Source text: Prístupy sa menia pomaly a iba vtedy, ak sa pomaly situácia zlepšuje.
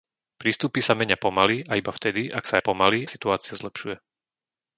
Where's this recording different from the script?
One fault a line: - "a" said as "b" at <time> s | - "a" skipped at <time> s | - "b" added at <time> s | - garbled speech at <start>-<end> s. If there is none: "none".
none